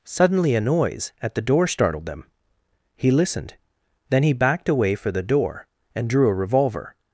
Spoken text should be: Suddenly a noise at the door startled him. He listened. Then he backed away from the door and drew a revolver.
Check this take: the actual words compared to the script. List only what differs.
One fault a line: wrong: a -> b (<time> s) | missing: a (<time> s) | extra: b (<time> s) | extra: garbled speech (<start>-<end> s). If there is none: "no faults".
wrong: him -> them (2.1 s)
wrong: from -> for (5.0 s)